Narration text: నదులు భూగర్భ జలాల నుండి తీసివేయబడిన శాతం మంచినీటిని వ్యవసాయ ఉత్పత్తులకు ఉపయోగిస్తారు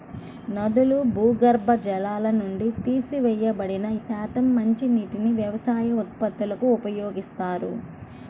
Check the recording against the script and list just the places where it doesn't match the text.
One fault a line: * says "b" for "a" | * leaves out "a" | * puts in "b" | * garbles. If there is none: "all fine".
all fine